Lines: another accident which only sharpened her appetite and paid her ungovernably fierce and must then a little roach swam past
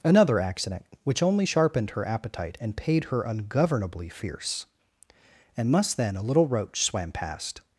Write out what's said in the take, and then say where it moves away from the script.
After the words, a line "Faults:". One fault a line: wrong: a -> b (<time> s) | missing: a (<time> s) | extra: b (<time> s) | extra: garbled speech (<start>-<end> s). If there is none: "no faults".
another accident which only sharpened her appetite and paid her ungovernably fierce and must then a little roach swam past
Faults:
no faults